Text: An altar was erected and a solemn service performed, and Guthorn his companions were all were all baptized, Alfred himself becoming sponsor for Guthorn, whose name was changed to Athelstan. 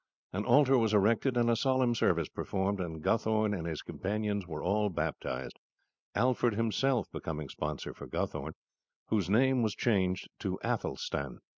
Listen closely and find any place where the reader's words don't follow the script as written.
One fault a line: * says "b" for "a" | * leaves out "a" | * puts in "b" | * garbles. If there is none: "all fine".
* puts in "and"
* leaves out "were all"